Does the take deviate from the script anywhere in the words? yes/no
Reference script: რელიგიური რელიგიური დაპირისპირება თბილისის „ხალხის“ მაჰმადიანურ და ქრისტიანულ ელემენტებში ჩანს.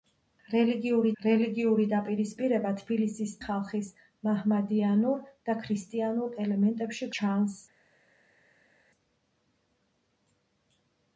no